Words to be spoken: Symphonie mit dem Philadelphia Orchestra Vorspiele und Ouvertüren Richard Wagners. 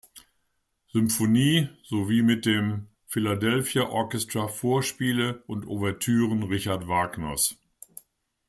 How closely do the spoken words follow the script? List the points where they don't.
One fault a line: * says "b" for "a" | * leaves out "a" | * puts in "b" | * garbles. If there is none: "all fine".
* puts in "sowie"